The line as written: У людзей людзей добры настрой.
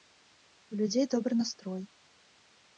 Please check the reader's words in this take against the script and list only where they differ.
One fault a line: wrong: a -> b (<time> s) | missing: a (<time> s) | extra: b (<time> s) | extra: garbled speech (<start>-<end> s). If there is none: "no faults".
missing: людзей (1.1 s)